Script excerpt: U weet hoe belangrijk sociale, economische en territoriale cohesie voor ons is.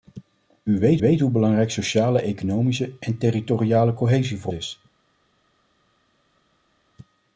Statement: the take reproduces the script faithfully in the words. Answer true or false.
false